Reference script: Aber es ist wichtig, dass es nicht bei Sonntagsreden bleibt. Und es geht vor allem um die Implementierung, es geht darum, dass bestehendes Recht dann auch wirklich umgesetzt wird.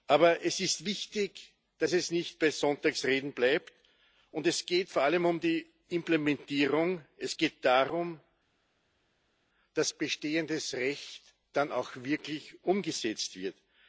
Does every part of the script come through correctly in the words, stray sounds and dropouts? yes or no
yes